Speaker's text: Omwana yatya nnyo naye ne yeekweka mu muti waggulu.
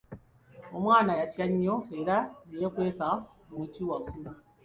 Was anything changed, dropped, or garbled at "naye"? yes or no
yes